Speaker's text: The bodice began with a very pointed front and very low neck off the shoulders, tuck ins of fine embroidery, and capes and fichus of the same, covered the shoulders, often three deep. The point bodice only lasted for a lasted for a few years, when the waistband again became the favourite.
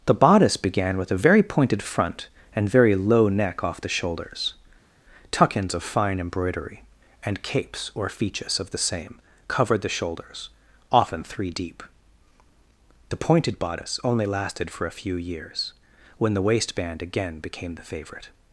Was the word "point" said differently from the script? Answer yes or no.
yes